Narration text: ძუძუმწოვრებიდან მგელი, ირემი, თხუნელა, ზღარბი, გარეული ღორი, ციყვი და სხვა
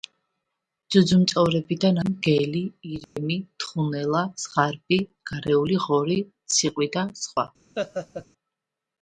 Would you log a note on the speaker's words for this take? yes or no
no